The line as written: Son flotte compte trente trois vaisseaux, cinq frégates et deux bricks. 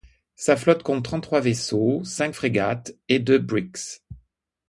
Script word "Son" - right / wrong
wrong